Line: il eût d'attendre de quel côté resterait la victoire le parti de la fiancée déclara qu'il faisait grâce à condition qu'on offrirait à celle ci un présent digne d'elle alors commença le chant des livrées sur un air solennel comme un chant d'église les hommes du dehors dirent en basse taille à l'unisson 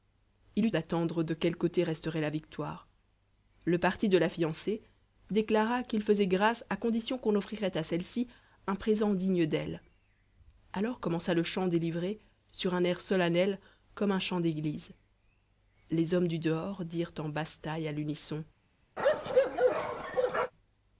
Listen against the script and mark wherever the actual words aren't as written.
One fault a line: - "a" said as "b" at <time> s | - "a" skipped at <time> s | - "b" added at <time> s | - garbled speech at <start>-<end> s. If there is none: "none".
none